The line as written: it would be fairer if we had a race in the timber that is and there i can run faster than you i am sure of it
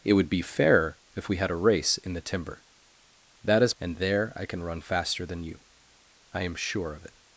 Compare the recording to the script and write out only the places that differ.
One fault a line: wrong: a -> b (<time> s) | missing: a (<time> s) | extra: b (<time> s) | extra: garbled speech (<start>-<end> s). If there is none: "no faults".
no faults